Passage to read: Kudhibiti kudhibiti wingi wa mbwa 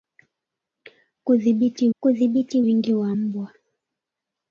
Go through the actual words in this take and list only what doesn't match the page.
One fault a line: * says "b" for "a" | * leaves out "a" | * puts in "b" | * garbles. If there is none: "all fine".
all fine